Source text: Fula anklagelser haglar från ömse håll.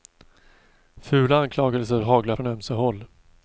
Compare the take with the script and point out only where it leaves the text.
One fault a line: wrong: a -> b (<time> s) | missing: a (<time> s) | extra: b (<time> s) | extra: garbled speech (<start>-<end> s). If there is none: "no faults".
no faults